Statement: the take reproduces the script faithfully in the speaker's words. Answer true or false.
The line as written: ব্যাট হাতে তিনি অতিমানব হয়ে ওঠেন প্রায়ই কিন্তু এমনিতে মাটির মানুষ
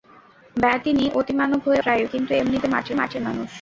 false